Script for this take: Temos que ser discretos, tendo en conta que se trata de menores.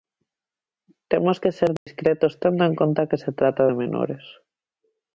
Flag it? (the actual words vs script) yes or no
no